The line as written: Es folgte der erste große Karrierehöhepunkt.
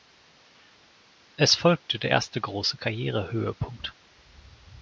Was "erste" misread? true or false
false